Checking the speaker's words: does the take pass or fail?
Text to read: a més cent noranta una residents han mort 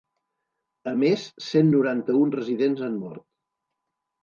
fail